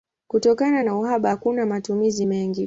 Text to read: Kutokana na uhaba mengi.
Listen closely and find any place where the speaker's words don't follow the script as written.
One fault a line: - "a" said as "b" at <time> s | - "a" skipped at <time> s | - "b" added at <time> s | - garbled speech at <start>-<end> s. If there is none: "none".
- "hakuna matumizi" added at 1.3 s